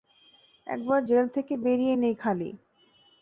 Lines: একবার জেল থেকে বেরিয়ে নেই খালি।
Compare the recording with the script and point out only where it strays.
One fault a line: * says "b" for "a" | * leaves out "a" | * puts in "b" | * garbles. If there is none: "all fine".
all fine